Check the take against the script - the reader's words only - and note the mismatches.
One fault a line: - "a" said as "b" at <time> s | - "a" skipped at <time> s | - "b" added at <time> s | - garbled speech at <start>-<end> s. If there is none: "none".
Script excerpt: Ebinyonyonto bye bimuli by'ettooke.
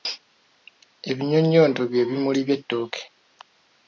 none